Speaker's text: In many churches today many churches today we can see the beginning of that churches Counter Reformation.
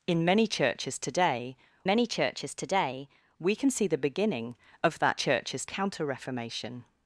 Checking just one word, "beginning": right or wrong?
right